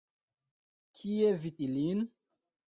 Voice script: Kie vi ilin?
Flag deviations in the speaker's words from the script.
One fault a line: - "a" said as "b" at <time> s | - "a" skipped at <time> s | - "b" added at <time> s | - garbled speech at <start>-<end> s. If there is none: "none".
none